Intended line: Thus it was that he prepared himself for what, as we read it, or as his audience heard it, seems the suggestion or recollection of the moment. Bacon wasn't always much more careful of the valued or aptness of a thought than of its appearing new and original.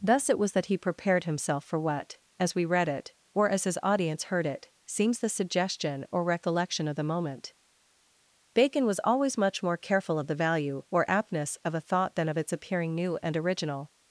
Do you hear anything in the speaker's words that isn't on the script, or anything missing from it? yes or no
yes